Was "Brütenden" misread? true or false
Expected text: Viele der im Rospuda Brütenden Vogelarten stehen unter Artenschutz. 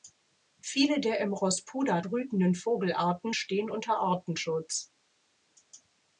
false